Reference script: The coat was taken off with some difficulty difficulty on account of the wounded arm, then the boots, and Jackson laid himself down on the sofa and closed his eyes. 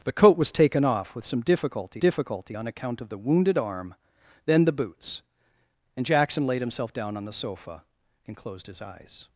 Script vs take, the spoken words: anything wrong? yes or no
no